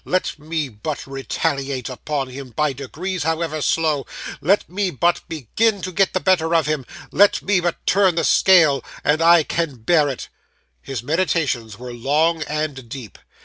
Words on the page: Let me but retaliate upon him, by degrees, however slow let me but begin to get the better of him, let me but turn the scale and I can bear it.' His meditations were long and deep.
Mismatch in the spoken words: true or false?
false